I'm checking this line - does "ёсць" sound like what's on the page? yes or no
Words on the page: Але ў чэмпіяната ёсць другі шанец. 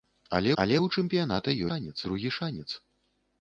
no